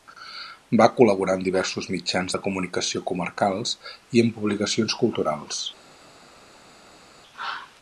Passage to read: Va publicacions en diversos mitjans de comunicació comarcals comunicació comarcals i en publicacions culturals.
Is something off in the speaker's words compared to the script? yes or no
yes